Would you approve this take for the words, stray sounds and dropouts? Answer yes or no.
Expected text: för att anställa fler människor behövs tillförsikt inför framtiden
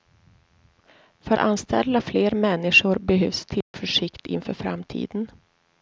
no